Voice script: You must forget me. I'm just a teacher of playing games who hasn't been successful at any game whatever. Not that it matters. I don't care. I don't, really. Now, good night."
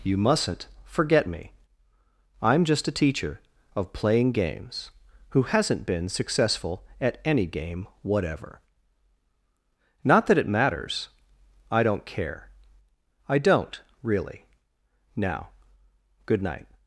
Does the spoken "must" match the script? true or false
false